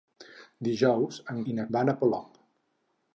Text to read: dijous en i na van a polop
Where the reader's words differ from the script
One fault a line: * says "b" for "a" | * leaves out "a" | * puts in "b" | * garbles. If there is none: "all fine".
all fine